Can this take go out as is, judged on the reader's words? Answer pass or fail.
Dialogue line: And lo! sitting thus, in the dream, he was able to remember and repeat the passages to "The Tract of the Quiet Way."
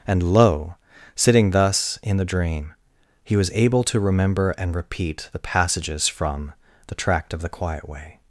fail